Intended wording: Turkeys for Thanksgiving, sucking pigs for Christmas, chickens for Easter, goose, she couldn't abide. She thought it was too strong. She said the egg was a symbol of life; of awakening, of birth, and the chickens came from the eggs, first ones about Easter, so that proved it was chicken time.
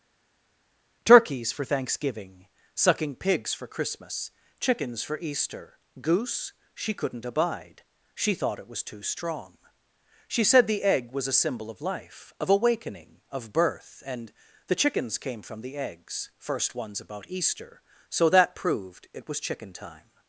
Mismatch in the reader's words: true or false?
false